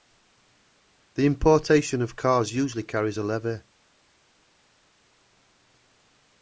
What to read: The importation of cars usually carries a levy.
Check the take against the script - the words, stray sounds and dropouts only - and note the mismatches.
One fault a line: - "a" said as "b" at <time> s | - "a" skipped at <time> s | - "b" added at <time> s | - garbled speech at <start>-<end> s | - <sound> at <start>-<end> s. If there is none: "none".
none